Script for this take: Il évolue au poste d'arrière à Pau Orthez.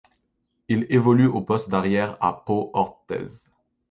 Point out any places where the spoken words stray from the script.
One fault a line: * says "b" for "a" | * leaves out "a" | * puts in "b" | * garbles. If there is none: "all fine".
all fine